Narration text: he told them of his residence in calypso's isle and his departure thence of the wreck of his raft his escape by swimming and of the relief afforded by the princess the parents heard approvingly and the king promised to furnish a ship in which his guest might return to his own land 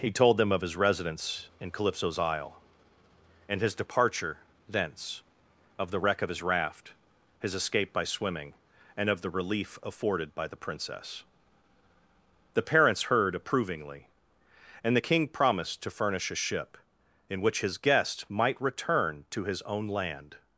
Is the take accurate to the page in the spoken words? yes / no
yes